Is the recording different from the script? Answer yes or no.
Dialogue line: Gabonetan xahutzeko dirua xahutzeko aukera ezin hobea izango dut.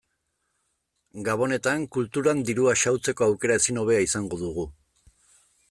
yes